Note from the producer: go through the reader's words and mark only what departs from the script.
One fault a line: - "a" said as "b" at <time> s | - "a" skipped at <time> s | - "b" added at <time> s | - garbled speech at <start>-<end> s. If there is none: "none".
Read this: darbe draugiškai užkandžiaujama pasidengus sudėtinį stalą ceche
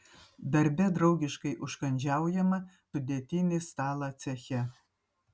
- "pasidengus" skipped at 2.6 s